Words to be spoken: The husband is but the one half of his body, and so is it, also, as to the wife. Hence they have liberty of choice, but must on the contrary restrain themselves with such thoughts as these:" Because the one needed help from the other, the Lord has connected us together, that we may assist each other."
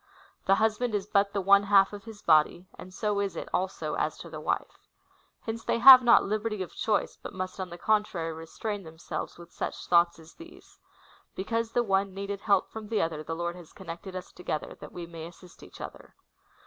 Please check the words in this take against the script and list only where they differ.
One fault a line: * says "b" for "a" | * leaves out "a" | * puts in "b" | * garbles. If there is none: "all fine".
* puts in "not"